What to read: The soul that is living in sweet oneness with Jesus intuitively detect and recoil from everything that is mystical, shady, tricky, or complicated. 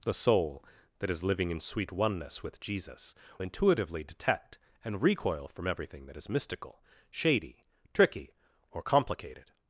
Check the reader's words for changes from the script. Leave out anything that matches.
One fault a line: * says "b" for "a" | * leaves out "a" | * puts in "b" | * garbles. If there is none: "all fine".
all fine